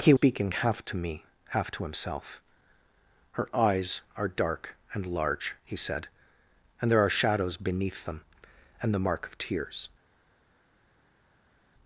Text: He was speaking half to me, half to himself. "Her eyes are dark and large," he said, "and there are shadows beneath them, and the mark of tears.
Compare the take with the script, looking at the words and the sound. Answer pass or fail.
fail